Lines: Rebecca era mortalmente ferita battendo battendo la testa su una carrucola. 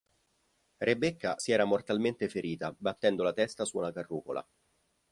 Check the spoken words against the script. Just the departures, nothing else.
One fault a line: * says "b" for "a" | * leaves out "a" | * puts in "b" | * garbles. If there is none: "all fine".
* puts in "si"
* leaves out "battendo"